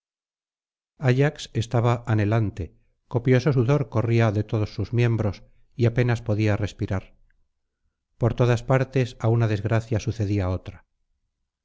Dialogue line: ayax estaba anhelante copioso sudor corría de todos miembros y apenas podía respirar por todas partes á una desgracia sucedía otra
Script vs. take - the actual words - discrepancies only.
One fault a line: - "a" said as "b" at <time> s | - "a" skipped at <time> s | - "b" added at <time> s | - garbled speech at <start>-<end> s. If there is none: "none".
- "sus" added at 4.7 s